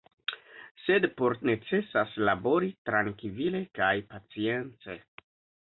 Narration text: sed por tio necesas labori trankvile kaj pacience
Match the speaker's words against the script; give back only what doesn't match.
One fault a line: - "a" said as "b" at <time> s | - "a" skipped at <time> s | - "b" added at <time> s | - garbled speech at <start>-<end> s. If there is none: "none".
- "tio" skipped at 1.3 s